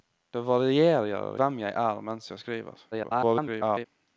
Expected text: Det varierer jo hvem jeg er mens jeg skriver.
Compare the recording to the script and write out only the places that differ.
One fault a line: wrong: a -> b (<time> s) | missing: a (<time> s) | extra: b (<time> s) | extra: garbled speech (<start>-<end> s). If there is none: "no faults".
missing: jo (1.4 s)
extra: garbled speech (2.9-3.9 s)